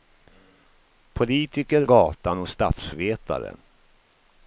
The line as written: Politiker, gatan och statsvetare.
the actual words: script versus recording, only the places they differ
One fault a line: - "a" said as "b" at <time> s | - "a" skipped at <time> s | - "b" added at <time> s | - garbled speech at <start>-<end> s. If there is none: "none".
none